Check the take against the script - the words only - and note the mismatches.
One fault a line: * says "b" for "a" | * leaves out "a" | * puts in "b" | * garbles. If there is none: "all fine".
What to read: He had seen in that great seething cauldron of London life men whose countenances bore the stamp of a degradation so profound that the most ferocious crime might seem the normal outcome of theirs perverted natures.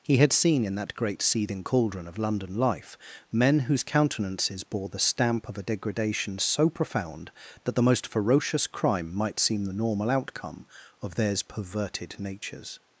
all fine